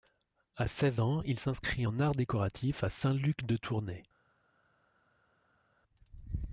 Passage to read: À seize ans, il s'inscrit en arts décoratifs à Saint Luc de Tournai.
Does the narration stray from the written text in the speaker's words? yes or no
no